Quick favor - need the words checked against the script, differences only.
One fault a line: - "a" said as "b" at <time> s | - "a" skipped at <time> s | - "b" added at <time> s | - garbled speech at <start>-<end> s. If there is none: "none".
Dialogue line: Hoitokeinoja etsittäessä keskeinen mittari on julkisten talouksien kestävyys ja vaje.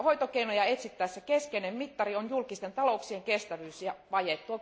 none